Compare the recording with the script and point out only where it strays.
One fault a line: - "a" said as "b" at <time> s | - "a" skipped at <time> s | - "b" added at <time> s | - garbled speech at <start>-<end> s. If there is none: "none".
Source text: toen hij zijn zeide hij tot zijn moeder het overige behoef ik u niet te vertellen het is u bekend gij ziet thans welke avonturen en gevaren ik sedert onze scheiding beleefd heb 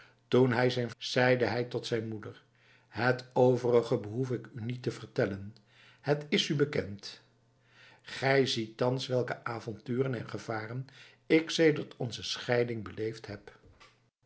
none